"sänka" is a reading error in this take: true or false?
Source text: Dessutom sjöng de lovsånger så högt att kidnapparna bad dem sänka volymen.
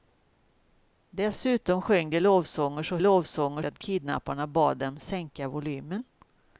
false